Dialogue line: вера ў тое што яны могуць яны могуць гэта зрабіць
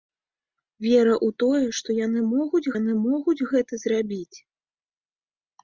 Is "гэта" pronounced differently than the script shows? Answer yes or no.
no